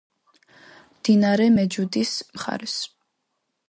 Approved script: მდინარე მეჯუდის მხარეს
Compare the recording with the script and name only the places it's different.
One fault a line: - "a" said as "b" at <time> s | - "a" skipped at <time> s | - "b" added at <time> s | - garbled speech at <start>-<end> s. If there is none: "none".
none